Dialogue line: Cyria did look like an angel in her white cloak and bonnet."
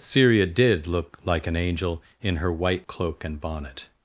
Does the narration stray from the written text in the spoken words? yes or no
no